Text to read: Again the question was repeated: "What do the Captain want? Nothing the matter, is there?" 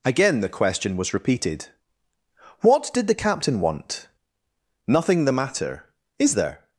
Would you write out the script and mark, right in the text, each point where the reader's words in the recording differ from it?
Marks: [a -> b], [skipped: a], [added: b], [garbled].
Again the question was repeated: "What [do -> did] the Captain want? Nothing the matter, is there?"